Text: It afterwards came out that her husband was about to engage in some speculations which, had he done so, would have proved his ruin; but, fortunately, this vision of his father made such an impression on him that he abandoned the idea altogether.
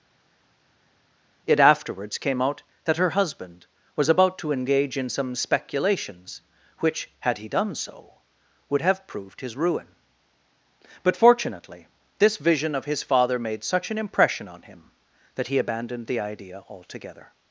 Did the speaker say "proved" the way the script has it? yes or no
yes